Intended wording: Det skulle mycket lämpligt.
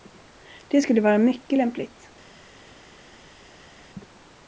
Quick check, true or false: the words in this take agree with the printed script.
false